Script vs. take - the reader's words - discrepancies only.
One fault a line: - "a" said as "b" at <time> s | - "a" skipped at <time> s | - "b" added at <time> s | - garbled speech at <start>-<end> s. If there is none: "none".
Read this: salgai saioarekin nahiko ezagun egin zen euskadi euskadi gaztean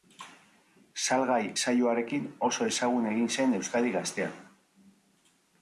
- "nahiko" said as "oso" at 2.5 s
- "euskadi" skipped at 3.9 s